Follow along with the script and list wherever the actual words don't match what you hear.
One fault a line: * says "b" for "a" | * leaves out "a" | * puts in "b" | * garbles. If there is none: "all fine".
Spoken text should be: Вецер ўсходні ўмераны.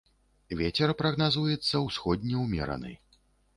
* puts in "прагназуецца"